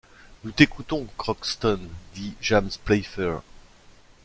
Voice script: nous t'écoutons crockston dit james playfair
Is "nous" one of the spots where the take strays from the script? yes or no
no